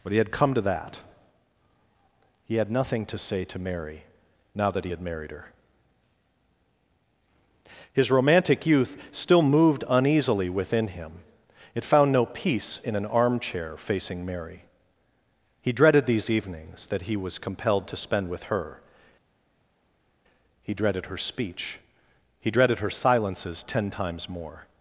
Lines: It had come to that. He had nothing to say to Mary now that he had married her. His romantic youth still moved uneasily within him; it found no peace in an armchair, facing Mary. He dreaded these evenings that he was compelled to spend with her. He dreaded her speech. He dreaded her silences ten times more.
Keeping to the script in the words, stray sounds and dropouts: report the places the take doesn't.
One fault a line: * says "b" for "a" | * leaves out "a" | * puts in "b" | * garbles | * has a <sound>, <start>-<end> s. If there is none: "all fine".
* says "But he" for "It"